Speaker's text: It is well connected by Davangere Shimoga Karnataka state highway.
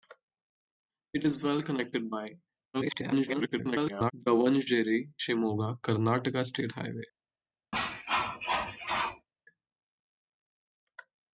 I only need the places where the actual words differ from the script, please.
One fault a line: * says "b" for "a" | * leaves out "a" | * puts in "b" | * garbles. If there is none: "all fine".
* garbles